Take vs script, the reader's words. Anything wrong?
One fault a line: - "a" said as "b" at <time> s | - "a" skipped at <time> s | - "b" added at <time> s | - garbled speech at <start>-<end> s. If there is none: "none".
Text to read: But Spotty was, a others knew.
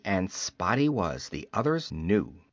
- "But" said as "And" at 0.0 s
- "a" said as "the" at 1.3 s